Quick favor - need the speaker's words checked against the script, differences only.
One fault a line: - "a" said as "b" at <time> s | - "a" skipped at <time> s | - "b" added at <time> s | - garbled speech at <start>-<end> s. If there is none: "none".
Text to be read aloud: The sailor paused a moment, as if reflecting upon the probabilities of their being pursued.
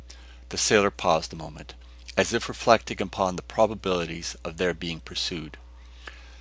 none